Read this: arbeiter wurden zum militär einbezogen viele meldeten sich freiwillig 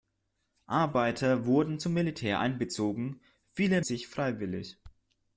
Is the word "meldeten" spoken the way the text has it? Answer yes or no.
no